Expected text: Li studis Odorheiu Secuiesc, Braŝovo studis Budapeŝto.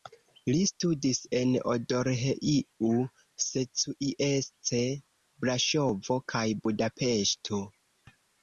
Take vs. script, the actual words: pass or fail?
fail